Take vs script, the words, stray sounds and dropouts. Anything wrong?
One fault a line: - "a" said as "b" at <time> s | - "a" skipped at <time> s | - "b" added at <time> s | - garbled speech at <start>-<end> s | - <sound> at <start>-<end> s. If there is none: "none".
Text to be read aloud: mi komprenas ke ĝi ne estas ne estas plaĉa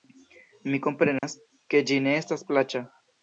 - dropout at 1.2-1.2 s
- "ne estas" skipped at 2.5 s